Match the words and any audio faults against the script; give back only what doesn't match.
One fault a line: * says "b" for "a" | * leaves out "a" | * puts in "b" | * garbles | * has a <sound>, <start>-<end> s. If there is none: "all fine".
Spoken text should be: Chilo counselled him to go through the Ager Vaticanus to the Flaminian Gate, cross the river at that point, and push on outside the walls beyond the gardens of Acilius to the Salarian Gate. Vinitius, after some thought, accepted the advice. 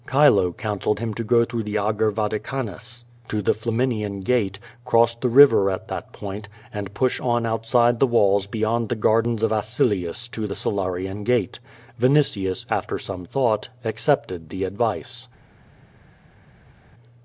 all fine